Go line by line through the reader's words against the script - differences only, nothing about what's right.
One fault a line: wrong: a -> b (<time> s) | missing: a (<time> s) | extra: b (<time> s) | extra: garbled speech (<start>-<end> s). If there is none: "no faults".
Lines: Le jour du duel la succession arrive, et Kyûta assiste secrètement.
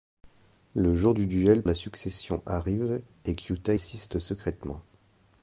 no faults